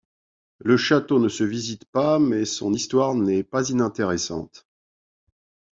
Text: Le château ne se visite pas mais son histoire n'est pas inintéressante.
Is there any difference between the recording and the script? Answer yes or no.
no